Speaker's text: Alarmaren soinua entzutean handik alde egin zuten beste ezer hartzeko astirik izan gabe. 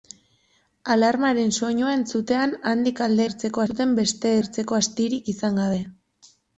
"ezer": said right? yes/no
no